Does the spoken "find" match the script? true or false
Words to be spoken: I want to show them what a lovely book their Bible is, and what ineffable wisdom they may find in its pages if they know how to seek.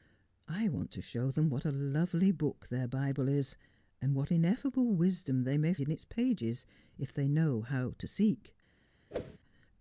false